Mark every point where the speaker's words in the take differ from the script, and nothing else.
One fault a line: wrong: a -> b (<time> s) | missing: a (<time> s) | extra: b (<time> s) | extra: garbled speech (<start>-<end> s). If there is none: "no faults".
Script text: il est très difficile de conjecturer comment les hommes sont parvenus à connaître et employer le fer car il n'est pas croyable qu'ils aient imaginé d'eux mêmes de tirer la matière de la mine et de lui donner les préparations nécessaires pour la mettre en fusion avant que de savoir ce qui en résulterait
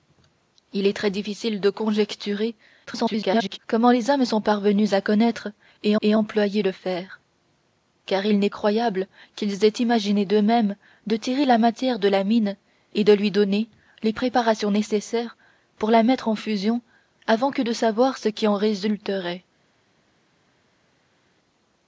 extra: garbled speech (2.9-3.6 s)
extra: et (6.0 s)
missing: pas (8.5 s)